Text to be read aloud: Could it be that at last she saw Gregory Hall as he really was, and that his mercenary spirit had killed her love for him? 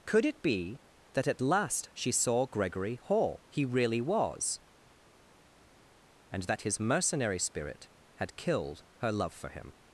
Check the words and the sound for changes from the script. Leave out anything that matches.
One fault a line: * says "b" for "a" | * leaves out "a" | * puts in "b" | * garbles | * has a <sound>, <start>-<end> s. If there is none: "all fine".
* leaves out "as"